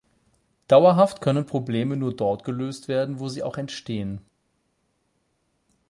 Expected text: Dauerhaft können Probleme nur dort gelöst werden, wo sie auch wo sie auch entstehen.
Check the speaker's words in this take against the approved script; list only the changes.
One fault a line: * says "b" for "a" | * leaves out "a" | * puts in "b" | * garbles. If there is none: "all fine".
* leaves out "wo sie auch"